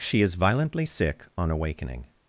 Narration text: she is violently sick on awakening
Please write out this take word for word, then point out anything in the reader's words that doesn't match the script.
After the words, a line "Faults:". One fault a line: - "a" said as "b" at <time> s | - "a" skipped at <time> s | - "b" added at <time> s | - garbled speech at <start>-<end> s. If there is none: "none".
she is violently sick on awakening
Faults:
none